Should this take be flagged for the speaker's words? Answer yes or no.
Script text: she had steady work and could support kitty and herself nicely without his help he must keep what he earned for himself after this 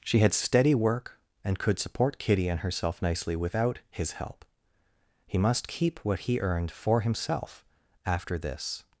no